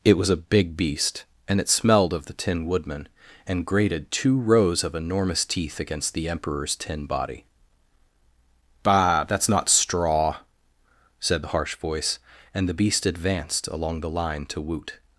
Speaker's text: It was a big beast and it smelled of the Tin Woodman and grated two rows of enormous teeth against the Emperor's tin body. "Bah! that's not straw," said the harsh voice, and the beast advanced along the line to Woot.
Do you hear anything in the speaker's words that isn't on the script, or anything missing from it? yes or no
no